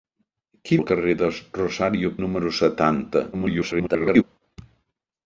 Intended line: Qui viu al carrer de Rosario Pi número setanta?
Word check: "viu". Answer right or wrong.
wrong